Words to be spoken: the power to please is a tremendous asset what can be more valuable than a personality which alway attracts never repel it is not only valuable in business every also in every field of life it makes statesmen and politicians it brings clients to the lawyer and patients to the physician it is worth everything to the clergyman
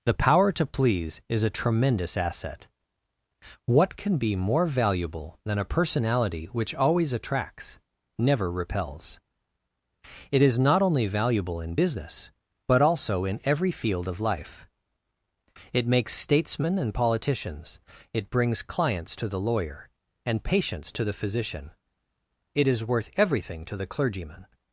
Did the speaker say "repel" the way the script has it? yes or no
no